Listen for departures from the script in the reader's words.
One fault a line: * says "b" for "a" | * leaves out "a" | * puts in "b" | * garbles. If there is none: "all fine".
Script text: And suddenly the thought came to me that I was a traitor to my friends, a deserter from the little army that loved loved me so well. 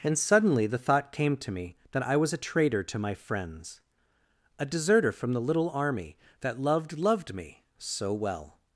all fine